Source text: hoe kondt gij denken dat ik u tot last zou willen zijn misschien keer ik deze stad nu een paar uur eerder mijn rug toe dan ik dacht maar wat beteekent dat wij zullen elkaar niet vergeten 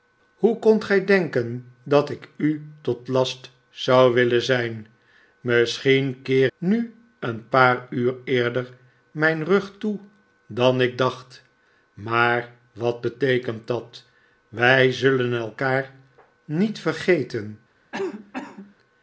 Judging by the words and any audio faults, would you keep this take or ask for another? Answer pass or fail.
fail